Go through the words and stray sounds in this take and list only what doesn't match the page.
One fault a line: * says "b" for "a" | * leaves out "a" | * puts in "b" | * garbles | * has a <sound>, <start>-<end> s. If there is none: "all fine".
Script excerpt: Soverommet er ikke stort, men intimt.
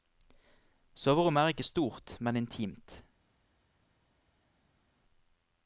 all fine